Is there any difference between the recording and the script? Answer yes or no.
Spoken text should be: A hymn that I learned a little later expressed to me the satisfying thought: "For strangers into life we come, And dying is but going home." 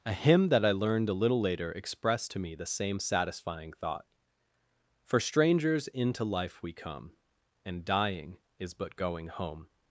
yes